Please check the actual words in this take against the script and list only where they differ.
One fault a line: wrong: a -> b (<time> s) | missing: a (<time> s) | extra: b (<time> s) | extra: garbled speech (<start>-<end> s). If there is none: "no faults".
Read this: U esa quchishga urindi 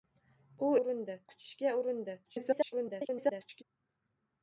wrong: esa -> urindi (0.8 s)
extra: garbled speech (2.2-3.6 s)